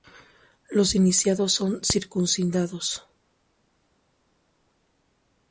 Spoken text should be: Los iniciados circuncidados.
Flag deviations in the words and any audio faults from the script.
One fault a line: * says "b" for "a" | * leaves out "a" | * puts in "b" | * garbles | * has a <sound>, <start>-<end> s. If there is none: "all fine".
* puts in "son"